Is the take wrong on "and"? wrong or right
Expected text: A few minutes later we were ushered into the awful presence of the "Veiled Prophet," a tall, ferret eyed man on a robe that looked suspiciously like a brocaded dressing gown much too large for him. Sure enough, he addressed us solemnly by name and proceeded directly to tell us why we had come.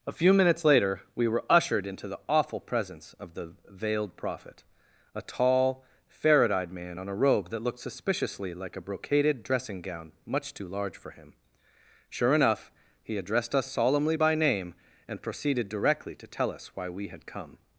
right